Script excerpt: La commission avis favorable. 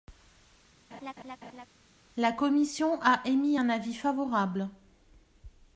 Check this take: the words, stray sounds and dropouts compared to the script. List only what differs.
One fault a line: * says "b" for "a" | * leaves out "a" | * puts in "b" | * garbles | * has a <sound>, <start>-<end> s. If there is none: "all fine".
* has a laugh, 0.9-1.7 s
* puts in "a émis un"